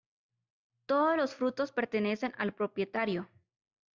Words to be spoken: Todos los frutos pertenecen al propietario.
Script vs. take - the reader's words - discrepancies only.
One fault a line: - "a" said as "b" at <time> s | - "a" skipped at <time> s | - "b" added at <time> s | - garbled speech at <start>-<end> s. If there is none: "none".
none